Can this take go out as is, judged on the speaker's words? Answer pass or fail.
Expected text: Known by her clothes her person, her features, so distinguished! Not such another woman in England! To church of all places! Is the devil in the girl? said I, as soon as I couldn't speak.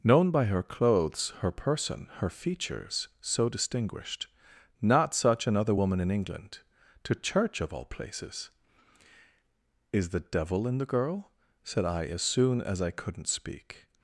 pass